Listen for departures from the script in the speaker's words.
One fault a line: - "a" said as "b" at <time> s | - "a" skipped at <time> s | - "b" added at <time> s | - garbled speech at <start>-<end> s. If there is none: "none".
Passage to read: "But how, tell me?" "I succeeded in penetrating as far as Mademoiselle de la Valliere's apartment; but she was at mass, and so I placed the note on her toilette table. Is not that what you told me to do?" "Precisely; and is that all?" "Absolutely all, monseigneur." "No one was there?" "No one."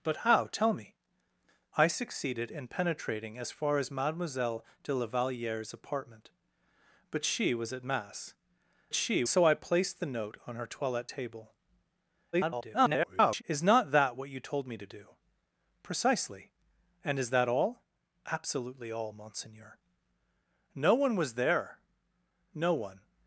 - "and" said as "she" at 8.9 s
- garbled speech at 12.3-13.4 s